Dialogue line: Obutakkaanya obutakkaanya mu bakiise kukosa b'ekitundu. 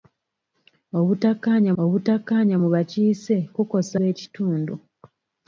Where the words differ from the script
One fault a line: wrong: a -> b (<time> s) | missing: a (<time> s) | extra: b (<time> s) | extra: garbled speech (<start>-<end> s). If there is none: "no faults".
no faults